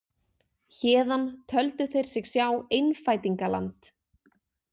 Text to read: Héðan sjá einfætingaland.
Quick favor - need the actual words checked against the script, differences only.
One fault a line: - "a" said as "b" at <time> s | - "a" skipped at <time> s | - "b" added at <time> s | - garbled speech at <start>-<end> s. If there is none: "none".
- "töldu þeir sig" added at 1.5 s